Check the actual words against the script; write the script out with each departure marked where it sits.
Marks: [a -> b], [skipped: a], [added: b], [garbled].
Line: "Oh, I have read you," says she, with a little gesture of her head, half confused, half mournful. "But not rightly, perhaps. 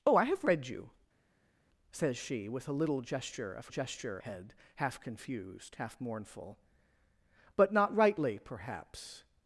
"Oh, I have read you," says she, with a little gesture of [her -> gesture] head, half confused, half mournful. "But not rightly, perhaps.